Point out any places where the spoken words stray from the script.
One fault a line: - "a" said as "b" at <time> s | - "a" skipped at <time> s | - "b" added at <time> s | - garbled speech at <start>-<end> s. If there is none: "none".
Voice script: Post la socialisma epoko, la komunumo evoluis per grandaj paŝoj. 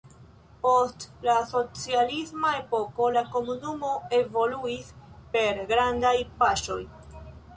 none